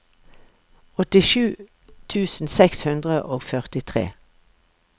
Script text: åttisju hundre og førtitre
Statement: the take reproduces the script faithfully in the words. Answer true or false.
false